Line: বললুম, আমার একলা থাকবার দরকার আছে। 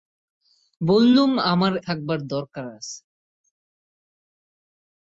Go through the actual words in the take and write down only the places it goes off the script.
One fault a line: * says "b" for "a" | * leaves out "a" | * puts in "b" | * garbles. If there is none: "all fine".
* leaves out "একলা"